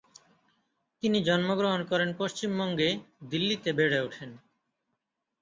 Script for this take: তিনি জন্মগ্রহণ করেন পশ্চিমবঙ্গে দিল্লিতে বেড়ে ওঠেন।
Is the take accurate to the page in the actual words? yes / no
yes